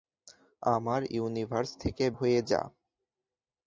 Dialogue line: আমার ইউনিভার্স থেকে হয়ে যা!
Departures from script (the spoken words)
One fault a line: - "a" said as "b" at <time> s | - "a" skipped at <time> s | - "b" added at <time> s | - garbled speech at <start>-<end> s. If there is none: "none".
none